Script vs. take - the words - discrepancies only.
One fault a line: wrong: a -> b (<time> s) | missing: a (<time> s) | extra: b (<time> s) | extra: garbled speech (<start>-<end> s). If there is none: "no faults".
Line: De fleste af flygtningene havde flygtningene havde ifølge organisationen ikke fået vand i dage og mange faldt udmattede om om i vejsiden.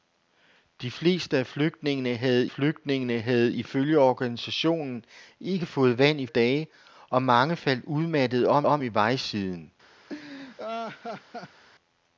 no faults